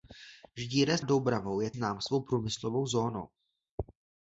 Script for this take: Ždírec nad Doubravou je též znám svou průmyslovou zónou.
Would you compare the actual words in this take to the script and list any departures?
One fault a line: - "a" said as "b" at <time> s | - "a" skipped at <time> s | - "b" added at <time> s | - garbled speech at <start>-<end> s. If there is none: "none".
- "nad" skipped at 1.0 s
- "též" skipped at 1.7 s